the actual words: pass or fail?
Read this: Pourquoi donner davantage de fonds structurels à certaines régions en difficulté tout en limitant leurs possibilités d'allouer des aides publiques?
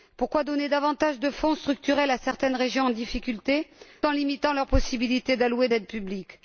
fail